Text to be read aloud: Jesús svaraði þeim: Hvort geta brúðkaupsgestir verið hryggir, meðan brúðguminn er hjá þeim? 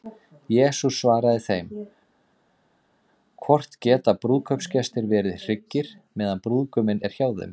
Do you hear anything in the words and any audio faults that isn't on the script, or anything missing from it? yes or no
no